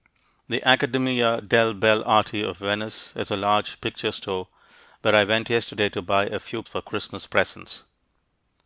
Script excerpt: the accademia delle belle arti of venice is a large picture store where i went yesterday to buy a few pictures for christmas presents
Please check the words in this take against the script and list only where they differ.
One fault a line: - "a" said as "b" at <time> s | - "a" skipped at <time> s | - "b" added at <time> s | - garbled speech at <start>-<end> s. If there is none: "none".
- "pictures" skipped at 6.6 s